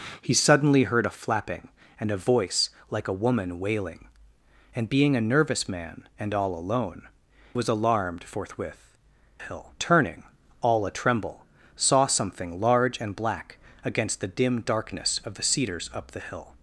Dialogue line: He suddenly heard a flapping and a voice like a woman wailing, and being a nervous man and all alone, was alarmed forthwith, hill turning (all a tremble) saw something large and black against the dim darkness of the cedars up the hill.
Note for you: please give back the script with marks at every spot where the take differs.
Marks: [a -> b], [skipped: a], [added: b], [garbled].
He suddenly heard a flapping and a voice like a woman wailing, and being a nervous man and all alone, was alarmed forthwith, hill turning (all a tremble) saw something large and black against the dim darkness of the cedars up the hill.